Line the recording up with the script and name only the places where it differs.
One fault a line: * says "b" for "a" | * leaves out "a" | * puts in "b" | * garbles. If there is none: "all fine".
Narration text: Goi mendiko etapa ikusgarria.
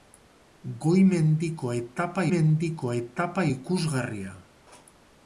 * puts in "mendiko etapa"